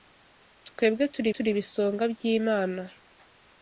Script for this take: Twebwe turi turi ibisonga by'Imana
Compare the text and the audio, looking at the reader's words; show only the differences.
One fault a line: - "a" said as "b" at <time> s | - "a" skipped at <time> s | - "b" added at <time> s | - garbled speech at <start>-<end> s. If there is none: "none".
none